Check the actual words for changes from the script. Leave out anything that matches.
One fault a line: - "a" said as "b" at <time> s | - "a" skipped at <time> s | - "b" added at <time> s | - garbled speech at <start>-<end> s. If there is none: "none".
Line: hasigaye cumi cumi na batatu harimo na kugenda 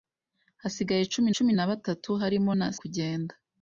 none